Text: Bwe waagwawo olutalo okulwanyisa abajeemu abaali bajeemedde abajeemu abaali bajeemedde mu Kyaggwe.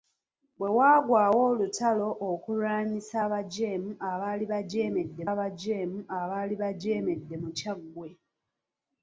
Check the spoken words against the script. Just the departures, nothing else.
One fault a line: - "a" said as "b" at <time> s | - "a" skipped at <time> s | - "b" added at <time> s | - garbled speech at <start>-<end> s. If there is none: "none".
none